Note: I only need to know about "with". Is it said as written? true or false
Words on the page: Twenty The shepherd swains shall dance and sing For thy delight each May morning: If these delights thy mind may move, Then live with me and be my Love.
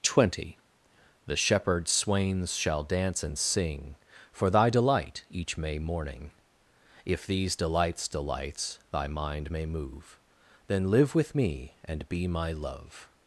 true